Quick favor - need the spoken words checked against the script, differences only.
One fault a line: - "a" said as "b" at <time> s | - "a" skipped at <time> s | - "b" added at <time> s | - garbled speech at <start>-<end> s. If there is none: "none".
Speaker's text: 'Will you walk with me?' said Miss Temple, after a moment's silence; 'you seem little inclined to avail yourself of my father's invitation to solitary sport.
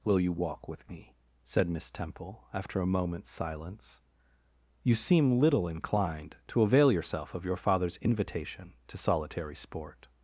- "my" said as "your" at 7.5 s